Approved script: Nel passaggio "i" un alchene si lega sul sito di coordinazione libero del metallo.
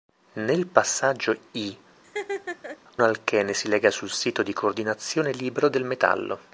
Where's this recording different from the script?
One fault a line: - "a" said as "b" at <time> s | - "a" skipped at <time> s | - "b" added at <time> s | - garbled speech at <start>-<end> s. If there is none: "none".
- "un" skipped at 1.8 s